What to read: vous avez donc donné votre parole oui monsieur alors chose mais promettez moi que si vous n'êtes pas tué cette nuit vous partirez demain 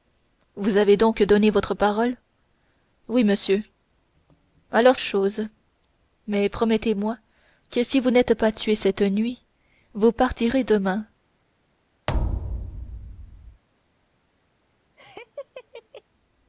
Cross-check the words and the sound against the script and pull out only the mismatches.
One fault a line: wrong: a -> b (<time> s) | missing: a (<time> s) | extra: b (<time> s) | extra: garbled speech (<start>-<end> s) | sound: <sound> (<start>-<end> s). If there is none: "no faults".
sound: thud (12.1-13.6 s)
sound: laugh (15.0-16.0 s)